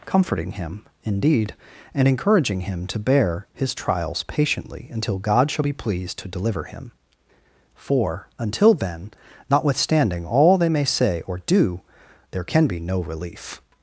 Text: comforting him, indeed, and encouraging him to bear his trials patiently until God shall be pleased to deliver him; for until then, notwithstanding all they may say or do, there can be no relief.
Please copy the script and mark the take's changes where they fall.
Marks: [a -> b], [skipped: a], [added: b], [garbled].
comforting him, indeed, and encouraging him to bear his trials patiently until God shall be pleased to deliver him; for until then, notwithstanding all they may say or do, there can be no relief.